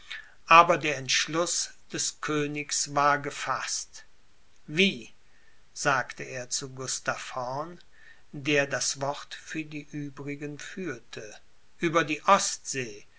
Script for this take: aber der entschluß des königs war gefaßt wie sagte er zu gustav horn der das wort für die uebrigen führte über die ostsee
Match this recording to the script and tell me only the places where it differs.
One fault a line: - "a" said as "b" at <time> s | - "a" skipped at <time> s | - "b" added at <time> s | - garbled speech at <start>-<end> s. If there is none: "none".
none